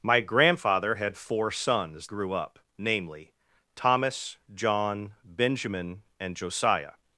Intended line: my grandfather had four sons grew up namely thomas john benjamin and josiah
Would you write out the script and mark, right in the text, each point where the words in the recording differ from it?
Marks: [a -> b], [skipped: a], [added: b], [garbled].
my grandfather had four sons grew up namely thomas john benjamin and josiah